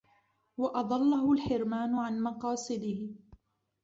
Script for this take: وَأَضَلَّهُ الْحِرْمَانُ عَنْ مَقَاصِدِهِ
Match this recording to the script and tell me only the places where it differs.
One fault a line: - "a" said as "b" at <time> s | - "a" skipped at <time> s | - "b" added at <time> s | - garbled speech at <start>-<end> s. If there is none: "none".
none